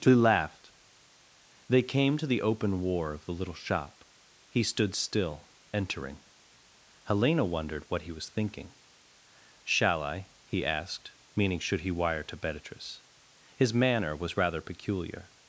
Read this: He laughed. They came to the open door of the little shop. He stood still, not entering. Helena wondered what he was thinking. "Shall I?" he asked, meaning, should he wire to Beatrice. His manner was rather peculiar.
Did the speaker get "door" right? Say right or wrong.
wrong